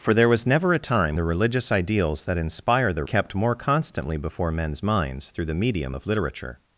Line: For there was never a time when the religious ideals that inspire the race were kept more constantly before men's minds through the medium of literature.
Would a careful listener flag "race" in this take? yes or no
yes